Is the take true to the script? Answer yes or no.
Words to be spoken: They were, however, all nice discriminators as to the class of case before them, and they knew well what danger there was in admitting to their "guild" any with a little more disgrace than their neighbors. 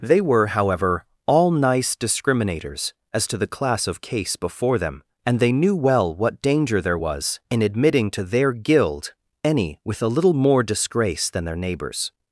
yes